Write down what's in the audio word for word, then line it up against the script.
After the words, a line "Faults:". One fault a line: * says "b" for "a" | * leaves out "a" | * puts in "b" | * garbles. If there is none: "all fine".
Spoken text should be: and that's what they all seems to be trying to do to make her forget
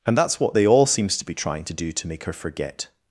and that's what they all seems to be trying to do to make her forget
Faults:
all fine